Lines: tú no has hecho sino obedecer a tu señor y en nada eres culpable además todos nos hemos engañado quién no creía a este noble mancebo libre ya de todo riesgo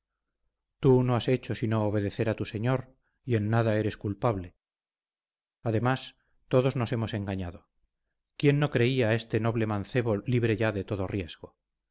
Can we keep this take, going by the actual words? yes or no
yes